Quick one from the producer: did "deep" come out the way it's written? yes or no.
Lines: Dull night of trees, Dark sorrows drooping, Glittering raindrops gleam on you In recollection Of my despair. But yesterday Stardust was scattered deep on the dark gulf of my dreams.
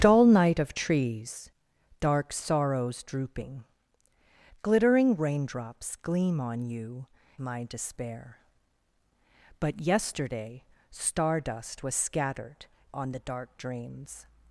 no